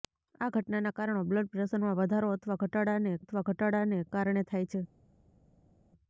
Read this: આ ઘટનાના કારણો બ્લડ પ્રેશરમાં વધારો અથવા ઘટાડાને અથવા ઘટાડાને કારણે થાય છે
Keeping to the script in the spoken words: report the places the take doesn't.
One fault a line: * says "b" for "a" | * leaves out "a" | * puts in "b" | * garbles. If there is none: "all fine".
all fine